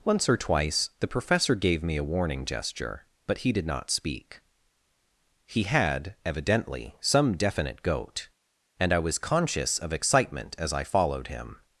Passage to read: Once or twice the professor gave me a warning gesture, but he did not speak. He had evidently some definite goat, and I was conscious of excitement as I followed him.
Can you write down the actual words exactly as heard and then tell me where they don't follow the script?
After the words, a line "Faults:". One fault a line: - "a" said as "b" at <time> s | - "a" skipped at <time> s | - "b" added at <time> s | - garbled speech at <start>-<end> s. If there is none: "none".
Once or twice the professor gave me a warning gesture, but he did not speak. He had evidently some definite goat, and I was conscious of excitement as I followed him.
Faults:
none